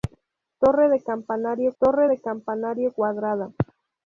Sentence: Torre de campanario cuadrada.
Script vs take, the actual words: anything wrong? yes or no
yes